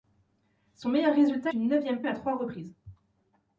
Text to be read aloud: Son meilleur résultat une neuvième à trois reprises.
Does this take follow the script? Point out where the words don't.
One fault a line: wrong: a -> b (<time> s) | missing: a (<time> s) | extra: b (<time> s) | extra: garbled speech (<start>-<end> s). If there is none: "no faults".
no faults